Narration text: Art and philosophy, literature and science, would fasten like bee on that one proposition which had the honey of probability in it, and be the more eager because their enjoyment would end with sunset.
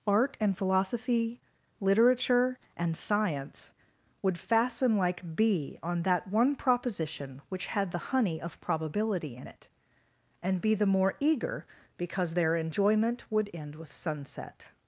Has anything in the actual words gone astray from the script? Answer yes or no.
no